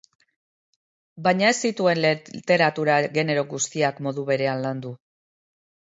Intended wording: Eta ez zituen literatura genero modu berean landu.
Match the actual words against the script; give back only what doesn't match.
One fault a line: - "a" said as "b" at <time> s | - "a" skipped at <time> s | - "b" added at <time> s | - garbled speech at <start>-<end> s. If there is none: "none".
- "Eta" said as "Baina" at 1.3 s
- "guztiak" added at 3.5 s